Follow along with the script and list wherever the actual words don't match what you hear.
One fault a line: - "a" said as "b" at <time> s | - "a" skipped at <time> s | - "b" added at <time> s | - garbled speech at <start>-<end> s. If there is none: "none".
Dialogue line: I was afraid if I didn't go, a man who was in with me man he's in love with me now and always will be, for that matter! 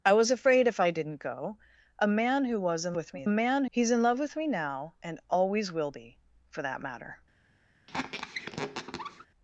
none